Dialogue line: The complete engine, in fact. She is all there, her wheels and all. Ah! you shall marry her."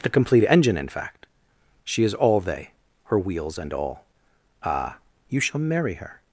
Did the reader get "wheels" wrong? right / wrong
right